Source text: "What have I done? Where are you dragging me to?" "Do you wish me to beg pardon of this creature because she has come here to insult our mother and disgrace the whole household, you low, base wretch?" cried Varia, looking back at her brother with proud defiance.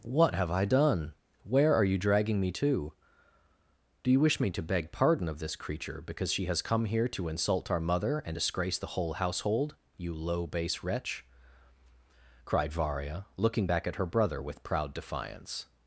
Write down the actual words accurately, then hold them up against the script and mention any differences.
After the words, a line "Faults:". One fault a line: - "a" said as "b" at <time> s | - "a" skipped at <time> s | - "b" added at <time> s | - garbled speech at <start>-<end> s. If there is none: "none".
"What have I done? Where are you dragging me to?" "Do you wish me to beg pardon of this creature because she has come here to insult our mother and disgrace the whole household, you low, base wretch?" cried Varia, looking back at her brother with proud defiance.
Faults:
none